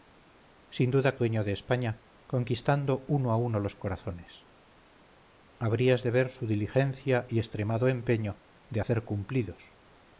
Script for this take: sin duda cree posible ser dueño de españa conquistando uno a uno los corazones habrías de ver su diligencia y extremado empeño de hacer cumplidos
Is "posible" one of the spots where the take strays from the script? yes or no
yes